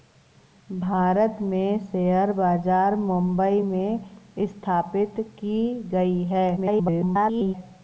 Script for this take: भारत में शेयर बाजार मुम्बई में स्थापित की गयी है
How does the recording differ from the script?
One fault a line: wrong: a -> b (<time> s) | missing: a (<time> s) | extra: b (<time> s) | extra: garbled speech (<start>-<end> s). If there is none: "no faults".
extra: garbled speech (6.6-7.5 s)